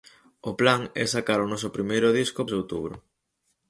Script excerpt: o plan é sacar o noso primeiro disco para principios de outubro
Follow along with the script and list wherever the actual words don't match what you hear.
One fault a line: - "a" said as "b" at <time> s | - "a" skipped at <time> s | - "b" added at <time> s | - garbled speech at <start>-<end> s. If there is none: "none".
- "para principios" skipped at 2.4 s